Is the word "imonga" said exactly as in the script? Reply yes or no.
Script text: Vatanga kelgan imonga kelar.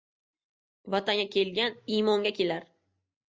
yes